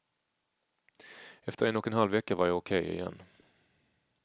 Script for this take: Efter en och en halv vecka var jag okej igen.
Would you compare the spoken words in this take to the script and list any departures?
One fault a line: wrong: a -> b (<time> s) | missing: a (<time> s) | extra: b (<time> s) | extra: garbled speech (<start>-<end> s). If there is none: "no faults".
no faults